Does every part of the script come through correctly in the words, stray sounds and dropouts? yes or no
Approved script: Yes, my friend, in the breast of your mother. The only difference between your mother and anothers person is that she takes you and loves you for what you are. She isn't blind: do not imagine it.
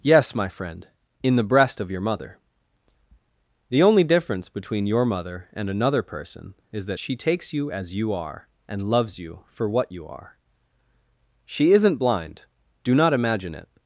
no